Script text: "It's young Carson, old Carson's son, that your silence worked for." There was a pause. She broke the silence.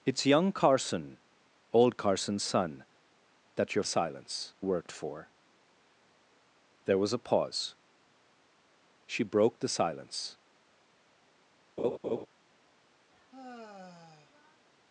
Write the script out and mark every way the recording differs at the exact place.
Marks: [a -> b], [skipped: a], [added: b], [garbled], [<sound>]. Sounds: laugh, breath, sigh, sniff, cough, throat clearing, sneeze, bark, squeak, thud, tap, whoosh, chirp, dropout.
"It's young Carson, old Carson's son, that your silence worked for." There was a pause. She broke the silence. [laugh] [sigh]